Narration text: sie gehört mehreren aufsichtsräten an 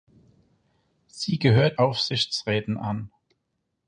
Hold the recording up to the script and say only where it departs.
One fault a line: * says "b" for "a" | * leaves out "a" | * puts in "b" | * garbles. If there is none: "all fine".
* leaves out "mehreren"